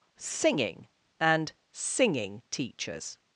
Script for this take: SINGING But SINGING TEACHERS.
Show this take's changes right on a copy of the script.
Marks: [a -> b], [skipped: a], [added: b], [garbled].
SINGING [But -> AND] SINGING TEACHERS.